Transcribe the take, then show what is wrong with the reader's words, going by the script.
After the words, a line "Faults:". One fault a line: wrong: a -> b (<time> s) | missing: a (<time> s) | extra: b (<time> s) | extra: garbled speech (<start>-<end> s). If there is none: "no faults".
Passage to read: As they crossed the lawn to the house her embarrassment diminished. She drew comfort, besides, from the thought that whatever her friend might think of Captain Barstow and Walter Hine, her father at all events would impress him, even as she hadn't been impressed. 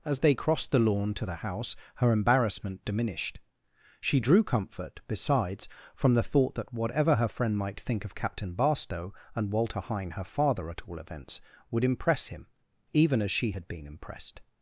As they crossed the lawn to the house her embarrassment diminished. She drew comfort, besides, from the thought that whatever her friend might think of Captain Barstow and Walter Hine, her father at all events would impress him, even as she had been impressed.
Faults:
wrong: hadn't -> had (13.5 s)